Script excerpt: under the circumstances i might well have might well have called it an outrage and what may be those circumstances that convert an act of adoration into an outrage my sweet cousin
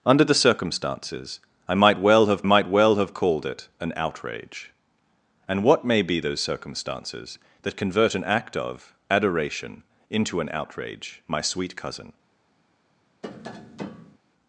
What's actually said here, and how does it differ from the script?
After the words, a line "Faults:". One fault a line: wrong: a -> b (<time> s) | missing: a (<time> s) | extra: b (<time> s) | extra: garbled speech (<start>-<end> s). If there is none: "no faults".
under the circumstances i might well have might well have called it an outrage and what may be those circumstances that convert an act of adoration into an outrage my sweet cousin
Faults:
no faults